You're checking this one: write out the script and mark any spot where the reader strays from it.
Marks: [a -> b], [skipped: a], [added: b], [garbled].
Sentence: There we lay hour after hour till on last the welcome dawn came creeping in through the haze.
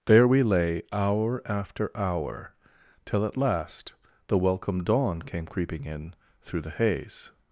There we lay hour after hour till [on -> at] last the welcome dawn came creeping in through the haze.